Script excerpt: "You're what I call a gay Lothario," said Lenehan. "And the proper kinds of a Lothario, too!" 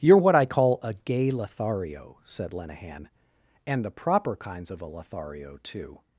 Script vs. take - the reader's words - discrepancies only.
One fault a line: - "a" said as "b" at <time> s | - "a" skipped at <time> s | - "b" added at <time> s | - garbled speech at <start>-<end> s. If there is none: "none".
none